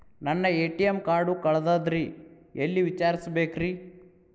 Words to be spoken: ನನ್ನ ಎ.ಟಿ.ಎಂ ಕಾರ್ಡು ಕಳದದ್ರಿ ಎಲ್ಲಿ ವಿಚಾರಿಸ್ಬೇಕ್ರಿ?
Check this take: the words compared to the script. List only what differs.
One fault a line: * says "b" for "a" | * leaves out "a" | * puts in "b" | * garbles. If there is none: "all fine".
all fine